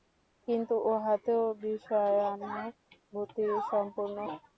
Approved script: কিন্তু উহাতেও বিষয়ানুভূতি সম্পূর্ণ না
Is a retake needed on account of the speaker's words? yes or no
no